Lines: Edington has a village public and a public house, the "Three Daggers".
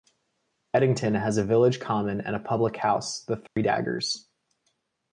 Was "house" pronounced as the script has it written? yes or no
yes